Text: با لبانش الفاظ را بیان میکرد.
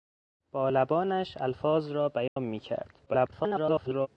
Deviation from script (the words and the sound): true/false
true